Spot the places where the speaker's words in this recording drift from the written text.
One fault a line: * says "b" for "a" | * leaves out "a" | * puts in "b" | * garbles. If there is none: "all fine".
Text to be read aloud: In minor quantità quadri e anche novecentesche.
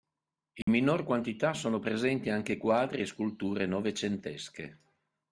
* puts in "sono presenti anche"
* says "sculture" for "anche"